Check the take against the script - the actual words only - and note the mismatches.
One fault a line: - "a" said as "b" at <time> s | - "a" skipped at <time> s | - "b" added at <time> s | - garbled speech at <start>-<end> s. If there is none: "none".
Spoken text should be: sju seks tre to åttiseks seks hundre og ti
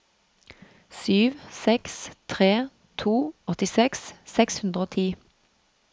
none